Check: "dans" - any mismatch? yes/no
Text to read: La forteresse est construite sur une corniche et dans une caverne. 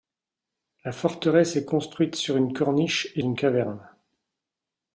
yes